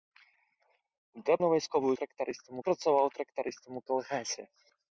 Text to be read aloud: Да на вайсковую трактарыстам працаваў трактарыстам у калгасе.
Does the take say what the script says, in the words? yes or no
yes